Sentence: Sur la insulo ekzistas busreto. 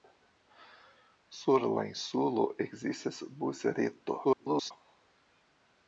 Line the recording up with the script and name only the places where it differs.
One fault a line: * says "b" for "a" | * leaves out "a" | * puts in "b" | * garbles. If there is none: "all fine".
* garbles